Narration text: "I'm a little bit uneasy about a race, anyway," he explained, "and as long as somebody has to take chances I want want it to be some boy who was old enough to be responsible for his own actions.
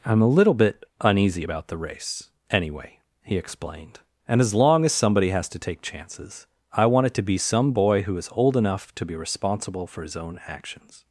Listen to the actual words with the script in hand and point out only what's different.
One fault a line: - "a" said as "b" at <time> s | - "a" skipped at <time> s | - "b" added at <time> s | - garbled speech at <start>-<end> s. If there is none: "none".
- "a" said as "the" at 1.7 s
- "want" skipped at 7.1 s
- "was" said as "is" at 8.2 s